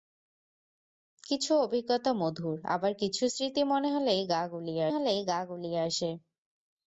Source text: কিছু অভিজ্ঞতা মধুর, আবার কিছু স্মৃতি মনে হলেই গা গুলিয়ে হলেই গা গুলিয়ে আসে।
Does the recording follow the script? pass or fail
pass